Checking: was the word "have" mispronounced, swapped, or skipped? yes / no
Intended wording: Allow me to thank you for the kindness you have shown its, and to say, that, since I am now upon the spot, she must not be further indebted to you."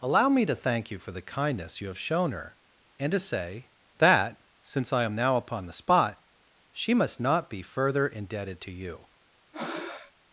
no